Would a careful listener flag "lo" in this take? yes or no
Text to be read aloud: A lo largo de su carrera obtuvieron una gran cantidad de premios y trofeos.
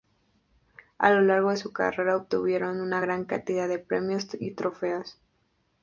no